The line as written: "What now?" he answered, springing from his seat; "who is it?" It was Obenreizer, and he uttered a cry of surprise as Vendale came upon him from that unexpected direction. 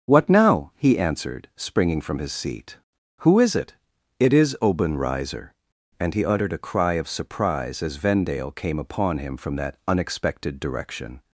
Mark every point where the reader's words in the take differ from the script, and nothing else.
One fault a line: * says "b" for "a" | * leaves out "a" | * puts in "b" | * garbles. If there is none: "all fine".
* says "is" for "was"